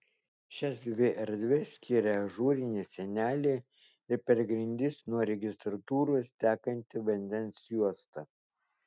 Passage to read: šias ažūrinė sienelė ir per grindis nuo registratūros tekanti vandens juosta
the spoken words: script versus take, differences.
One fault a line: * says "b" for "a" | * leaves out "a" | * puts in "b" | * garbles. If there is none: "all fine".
* puts in "dvi erdves skiria"